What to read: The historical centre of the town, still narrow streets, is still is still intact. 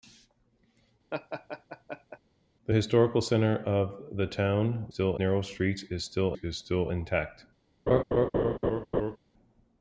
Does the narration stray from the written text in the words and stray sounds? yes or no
yes